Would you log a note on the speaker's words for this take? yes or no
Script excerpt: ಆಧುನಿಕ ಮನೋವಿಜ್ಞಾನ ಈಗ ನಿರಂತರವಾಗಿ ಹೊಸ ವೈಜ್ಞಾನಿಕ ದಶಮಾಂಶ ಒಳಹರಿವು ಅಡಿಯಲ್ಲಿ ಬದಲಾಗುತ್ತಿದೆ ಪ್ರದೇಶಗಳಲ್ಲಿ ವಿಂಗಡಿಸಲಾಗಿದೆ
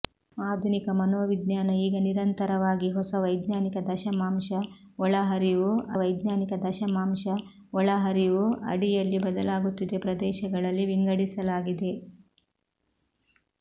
yes